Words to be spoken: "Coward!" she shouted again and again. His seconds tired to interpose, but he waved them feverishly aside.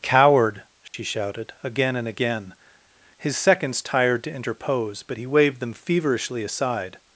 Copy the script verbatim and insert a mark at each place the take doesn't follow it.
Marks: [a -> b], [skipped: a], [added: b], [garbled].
"Coward!" she shouted again and again. His seconds tired to interpose, but he waved them feverishly aside.